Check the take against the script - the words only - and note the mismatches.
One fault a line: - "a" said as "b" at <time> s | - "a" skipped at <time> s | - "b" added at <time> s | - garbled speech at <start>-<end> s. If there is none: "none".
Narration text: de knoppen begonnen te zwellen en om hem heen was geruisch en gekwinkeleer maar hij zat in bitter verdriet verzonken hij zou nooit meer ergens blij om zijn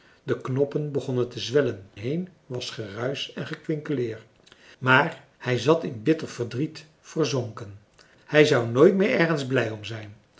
- "en om hem" skipped at 1.9 s